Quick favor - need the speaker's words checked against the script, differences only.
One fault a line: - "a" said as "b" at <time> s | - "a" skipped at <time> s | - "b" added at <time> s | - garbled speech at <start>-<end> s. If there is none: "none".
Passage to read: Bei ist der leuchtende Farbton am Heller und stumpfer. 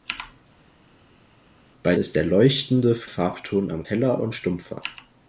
none